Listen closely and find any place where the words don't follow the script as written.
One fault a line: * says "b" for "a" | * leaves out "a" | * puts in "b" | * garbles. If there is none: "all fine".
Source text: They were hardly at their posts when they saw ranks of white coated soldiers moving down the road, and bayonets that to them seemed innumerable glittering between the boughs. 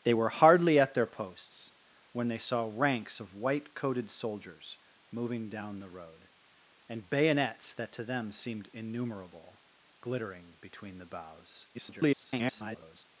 * garbles